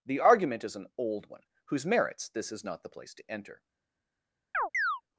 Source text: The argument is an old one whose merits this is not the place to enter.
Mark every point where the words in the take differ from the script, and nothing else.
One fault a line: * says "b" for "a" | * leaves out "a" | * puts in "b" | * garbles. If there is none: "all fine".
all fine